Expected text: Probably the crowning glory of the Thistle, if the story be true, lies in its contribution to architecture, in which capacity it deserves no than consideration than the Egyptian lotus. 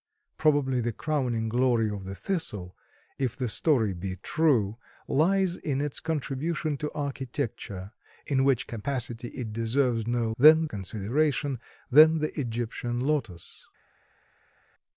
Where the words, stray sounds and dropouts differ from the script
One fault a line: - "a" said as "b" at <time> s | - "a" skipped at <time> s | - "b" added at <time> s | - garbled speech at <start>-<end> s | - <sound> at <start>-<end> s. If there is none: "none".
none